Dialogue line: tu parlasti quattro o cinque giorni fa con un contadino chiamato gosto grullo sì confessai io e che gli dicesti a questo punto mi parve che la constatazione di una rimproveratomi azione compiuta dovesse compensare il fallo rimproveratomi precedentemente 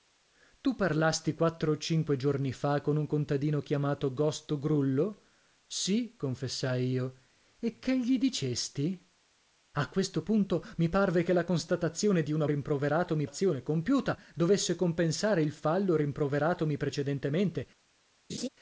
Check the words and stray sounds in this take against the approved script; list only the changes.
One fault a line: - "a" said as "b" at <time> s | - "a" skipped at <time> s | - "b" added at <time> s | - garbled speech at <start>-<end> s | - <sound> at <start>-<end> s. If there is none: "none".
- laugh at 18.3-18.5 s